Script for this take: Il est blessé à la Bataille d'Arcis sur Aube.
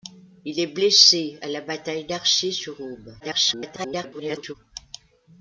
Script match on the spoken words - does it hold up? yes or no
no